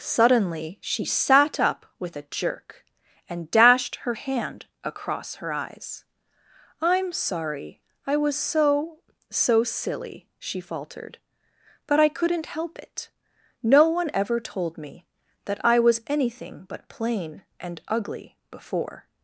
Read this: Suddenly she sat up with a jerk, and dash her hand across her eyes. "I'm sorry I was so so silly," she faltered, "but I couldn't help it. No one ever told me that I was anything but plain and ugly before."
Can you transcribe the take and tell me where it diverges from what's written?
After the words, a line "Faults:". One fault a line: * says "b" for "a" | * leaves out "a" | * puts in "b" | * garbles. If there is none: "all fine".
Suddenly she sat up with a jerk, and dashed her hand across her eyes. "I'm sorry I was so so silly," she faltered, "but I couldn't help it. No one ever told me that I was anything but plain and ugly before."
Faults:
* says "dashed" for "dash"